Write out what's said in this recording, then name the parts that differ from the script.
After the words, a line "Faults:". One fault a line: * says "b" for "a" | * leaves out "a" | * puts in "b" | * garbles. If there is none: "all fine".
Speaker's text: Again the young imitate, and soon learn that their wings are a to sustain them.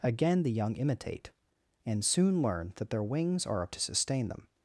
Again the young imitate, and soon learn that their wings are a to sustain them.
Faults:
all fine